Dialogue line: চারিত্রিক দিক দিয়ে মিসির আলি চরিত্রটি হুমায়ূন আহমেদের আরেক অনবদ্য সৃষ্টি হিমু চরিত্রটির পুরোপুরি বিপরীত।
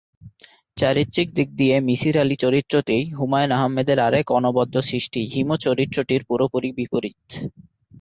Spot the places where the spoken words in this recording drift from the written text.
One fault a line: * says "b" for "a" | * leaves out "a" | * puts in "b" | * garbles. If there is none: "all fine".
all fine